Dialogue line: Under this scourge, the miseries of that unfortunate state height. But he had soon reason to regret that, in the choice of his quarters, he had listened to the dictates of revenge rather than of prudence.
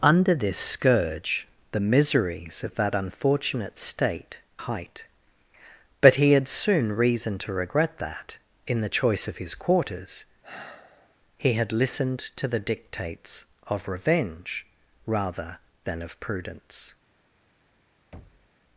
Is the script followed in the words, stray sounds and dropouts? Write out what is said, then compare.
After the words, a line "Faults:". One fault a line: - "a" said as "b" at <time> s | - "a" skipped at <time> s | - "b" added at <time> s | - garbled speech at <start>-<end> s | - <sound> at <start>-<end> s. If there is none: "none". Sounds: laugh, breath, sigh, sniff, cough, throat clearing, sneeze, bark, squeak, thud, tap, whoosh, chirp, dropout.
Under this scourge, the miseries of that unfortunate state height. But he had soon reason to regret that, in the choice of his quarters, he had listened to the dictates of revenge rather than of prudence.
Faults:
- sigh at 10.4-11.2 s
- thud at 18.1-18.5 s